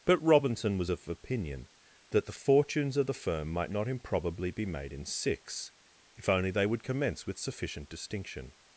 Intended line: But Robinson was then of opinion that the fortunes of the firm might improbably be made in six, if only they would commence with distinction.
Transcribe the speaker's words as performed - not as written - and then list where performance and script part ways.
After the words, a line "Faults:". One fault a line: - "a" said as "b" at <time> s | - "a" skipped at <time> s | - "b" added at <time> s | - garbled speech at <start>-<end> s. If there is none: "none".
But Robinson was of opinion that the fortunes of the firm might not improbably be made in six, if only they would commence with sufficient distinction.
Faults:
- "then" skipped at 0.9 s
- "not" added at 3.7 s
- "sufficient" added at 7.4 s